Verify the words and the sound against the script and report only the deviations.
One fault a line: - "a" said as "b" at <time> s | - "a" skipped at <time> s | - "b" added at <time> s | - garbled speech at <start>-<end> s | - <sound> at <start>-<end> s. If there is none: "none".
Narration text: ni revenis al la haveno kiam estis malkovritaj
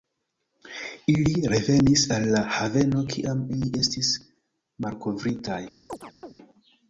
- "ni" said as "ili" at 1.1 s
- "ili" added at 3.6 s
- chirp at 5.9-6.3 s